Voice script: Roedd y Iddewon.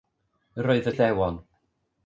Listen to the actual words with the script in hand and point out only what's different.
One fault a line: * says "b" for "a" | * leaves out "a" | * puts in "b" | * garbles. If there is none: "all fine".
all fine